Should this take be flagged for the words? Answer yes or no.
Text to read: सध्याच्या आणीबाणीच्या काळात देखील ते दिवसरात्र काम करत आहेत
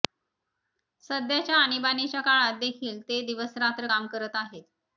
no